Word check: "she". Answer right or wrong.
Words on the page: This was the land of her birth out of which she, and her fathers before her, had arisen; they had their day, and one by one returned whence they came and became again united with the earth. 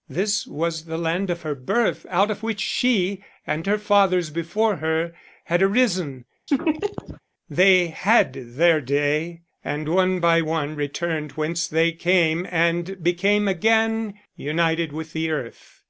right